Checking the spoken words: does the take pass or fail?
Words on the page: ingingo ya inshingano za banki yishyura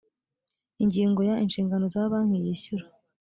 pass